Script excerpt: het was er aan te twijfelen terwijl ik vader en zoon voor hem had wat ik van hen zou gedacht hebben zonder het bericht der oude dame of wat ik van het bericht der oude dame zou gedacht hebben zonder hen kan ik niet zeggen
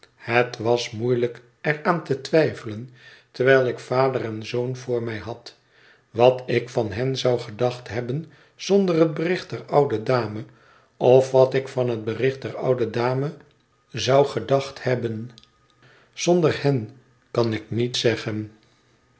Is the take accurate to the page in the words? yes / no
no